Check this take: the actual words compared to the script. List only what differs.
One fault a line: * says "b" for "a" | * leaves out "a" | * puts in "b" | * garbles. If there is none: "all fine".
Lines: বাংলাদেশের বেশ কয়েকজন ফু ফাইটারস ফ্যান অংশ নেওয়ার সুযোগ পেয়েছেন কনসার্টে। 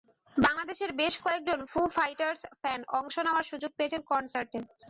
all fine